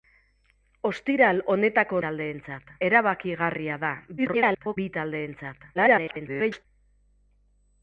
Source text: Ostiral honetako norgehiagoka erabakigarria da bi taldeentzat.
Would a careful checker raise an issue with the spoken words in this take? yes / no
yes